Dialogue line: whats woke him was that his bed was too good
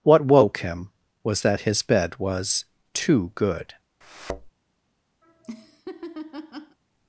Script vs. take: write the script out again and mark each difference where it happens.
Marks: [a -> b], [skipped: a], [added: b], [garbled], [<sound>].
[whats -> what] woke him was that his bed was too good [thud] [laugh]